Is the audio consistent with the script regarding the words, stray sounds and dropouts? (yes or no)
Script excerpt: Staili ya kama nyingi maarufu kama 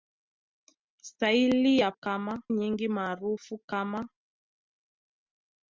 yes